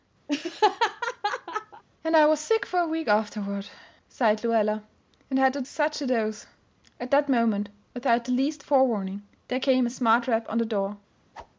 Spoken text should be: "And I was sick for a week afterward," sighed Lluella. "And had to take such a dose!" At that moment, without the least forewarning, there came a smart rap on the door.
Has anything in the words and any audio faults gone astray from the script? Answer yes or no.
yes